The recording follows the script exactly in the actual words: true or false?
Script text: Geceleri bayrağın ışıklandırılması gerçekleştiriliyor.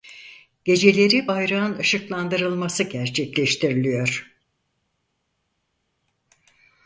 true